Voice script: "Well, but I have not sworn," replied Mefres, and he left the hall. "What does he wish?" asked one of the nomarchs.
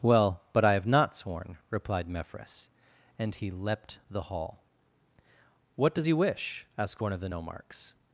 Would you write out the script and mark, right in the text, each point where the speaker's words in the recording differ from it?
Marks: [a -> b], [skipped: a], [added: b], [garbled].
"Well, but I have not sworn," replied Mefres, and he [left -> leapt] the hall. "What does he wish?" asked one of the nomarchs.